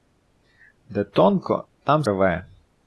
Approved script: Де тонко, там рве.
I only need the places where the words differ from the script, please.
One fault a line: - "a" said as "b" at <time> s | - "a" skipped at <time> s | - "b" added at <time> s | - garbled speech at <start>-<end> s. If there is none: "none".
none